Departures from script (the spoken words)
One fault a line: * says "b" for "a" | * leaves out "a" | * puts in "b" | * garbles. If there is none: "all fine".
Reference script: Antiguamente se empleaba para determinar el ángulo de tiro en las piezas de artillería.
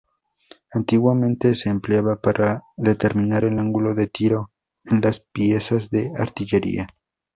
all fine